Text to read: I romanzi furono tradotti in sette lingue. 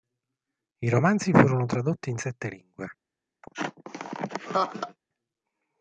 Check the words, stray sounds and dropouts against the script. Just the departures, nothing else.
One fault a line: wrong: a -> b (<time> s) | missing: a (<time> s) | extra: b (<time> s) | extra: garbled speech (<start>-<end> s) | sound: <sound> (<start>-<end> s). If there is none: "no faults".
sound: laugh (3.4-5.0 s)